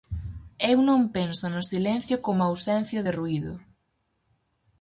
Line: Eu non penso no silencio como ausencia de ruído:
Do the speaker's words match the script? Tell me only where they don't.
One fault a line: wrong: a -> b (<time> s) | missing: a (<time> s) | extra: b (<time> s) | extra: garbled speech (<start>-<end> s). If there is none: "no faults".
no faults